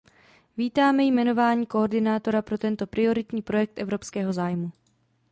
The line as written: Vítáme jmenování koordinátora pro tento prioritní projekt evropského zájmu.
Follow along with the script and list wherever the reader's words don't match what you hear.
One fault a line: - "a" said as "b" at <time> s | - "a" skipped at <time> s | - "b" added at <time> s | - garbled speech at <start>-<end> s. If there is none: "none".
none